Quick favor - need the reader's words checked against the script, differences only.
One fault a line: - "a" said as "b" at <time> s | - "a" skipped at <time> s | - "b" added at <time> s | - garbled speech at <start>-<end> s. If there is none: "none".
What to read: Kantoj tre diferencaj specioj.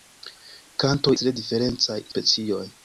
none